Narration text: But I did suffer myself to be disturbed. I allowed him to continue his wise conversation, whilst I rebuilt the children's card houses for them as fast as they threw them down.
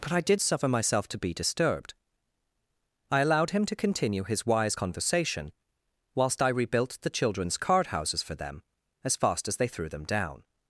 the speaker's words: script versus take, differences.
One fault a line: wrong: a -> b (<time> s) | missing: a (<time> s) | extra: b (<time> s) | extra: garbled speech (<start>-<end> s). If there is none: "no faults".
no faults